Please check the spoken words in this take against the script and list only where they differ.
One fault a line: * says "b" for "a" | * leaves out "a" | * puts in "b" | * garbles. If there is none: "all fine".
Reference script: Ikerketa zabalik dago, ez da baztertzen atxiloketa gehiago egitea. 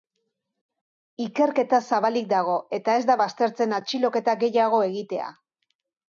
* puts in "eta"